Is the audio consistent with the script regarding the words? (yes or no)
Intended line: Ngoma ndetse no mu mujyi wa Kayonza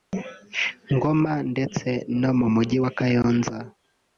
yes